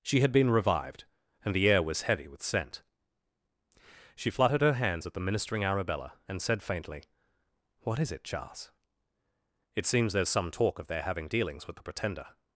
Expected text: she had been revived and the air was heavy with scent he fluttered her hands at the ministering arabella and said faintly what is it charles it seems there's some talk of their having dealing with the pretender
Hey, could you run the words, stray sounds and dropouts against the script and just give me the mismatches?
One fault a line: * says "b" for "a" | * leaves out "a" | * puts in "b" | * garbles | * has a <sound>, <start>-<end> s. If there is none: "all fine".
* says "she" for "he"
* says "dealings" for "dealing"